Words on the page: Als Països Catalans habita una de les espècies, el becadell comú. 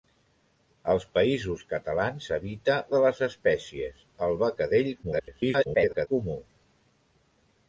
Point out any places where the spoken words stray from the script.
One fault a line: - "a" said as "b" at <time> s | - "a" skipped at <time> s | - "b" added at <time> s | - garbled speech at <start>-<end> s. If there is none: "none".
- "una" skipped at 2.8 s
- garbled speech at 5.0-6.1 s